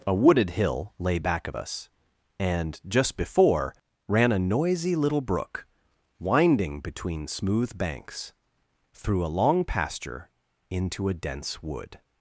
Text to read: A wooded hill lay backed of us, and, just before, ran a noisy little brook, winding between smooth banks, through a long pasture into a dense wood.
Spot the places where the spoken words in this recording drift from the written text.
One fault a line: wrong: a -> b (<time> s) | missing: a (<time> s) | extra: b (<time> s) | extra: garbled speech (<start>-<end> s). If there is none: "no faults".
wrong: backed -> back (1.2 s)